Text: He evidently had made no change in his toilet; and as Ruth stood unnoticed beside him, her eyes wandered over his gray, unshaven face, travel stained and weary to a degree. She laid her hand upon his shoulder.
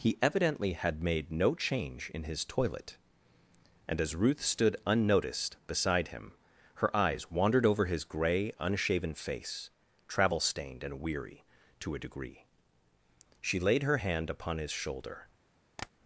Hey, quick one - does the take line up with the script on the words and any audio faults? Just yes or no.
no